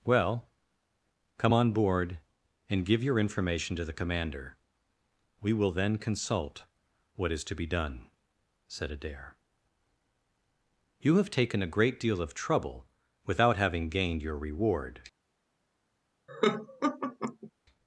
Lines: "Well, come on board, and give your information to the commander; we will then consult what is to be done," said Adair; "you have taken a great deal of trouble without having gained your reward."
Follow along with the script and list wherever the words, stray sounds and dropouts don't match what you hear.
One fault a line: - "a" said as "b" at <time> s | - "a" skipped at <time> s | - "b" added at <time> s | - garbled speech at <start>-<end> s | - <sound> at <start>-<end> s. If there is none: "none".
- laugh at 16.3-17.5 s